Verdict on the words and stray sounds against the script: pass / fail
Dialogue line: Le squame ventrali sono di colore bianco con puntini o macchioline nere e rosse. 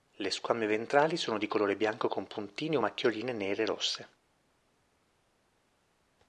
pass